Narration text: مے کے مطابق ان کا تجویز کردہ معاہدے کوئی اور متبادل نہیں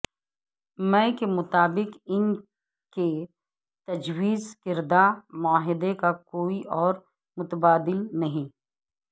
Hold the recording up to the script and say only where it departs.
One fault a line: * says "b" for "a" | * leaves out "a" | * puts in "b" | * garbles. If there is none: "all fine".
* says "کے" for "کا"
* puts in "کا"